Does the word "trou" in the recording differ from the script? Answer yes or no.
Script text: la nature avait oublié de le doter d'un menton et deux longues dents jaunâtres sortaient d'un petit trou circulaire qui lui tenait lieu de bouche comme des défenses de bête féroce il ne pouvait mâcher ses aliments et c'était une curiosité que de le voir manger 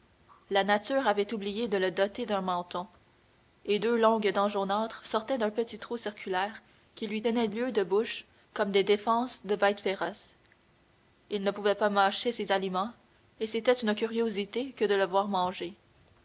no